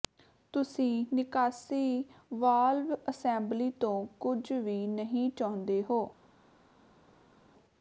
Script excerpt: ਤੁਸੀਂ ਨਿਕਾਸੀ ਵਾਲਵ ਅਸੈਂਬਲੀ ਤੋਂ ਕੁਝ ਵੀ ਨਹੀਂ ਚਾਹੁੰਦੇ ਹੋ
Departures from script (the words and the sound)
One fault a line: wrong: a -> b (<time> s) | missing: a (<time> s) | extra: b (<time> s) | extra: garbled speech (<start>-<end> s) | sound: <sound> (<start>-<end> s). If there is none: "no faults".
no faults